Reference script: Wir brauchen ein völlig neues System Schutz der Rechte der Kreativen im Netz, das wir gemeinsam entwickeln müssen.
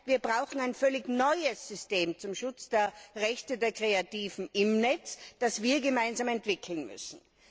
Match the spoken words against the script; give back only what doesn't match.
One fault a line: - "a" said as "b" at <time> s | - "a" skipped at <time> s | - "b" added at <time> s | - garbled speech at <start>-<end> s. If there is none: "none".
- "zum" added at 2.2 s